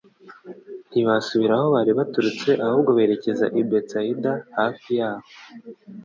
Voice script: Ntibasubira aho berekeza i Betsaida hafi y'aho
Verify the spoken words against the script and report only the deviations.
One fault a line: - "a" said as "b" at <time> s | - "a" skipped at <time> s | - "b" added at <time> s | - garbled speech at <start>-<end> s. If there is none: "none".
- "bari baturutse ahubwo" added at 1.8 s